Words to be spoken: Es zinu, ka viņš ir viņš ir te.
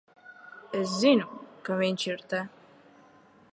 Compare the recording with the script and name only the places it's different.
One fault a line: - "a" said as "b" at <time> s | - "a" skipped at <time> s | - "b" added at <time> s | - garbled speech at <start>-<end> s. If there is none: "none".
- "viņš ir" skipped at 2.2 s